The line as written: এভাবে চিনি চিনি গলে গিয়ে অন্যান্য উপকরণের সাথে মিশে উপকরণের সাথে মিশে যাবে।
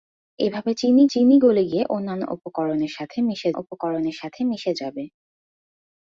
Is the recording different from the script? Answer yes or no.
no